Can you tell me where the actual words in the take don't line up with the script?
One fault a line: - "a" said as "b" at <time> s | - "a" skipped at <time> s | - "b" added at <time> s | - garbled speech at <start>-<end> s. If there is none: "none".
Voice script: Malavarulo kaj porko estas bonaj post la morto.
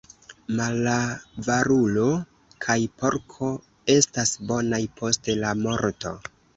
none